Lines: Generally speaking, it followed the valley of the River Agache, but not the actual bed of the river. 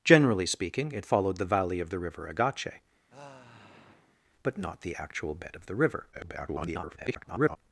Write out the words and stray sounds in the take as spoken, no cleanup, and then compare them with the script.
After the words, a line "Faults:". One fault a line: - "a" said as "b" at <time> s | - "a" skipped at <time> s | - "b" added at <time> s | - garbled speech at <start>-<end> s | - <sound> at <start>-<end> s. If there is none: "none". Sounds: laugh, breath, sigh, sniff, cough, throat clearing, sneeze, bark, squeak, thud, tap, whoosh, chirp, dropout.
Generally speaking, it followed the valley of the River Agache, but not the actual bed of the river. [garbled]
Faults:
- sigh at 3.1-4.2 s
- garbled speech at 6.1-7.6 s